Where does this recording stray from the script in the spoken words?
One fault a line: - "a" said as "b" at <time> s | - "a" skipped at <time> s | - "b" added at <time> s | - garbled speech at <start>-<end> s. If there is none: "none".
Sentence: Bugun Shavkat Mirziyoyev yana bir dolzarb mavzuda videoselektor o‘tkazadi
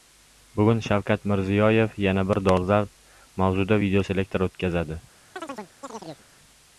none